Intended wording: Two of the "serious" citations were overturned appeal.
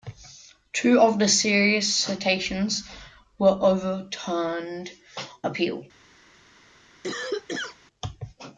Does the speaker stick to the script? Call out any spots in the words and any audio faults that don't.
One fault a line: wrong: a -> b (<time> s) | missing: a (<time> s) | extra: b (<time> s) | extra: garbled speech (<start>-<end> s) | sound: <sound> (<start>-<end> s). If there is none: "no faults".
sound: cough (7.0-7.8 s)